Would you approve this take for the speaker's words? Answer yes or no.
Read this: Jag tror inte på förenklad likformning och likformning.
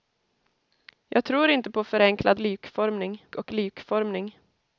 yes